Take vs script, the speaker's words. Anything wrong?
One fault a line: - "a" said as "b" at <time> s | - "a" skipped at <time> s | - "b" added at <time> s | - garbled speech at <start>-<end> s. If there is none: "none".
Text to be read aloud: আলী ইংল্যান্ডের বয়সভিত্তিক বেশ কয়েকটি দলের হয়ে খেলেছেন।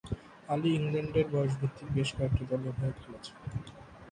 none